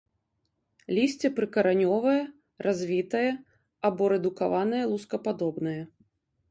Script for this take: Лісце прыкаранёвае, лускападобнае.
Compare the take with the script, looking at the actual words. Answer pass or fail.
fail